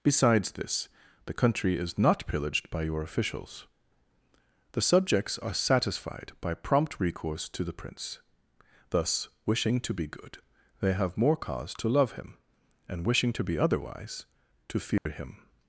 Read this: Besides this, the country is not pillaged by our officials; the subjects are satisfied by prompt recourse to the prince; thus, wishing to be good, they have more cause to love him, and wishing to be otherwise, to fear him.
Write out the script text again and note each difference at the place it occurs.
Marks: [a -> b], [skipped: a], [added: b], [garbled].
Besides this, the country is not pillaged by [our -> your] officials; the subjects are satisfied by prompt recourse to the prince; thus, wishing to be good, they have more cause to love him, and wishing to be otherwise, to fear him.